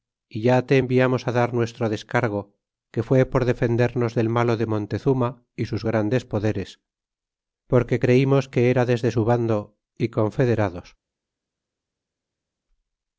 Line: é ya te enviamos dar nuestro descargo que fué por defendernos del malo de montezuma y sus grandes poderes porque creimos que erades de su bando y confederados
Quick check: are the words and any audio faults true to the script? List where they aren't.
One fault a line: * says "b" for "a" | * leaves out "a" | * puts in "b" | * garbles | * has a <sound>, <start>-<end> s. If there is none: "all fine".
all fine